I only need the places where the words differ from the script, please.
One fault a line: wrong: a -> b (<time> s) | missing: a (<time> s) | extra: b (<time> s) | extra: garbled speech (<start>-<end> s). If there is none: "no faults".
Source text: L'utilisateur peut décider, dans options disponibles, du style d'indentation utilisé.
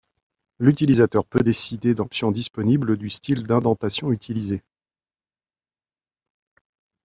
no faults